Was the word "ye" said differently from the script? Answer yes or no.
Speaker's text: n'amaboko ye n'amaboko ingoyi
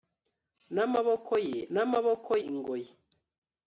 no